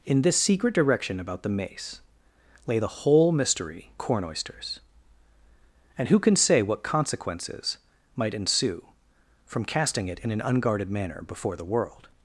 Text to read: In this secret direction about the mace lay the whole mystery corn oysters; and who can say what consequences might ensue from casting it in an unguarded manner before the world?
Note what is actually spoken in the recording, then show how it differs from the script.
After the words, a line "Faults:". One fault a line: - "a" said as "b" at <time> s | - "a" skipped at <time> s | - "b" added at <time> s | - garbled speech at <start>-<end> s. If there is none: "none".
In this secret direction about the mace lay the whole mystery corn oysters; and who can say what consequences might ensue from casting it in an unguarded manner before the world?
Faults:
none